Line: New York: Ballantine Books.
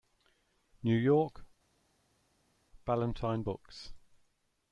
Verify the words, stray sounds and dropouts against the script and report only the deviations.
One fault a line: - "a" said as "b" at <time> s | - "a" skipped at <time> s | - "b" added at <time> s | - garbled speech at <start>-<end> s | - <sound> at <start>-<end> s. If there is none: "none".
none